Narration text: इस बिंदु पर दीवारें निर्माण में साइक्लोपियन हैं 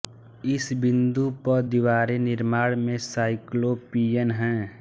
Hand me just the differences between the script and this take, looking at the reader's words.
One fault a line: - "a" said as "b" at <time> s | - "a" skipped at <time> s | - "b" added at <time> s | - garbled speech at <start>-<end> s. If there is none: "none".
none